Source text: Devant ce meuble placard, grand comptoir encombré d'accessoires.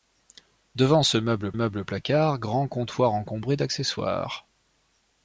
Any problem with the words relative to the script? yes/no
yes